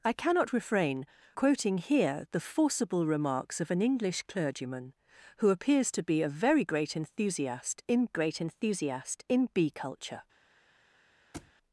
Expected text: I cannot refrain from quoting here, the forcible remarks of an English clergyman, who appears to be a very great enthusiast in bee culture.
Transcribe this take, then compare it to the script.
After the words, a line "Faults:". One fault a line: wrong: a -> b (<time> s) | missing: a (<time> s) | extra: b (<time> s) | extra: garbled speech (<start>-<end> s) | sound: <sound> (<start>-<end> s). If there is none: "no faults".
I cannot refrain quoting here, the forcible remarks of an English clergyman, who appears to be a very great enthusiast in great enthusiast in bee culture.
Faults:
missing: from (1.1 s)
extra: great enthusiast in (8.1 s)
sound: thud (11.3-11.5 s)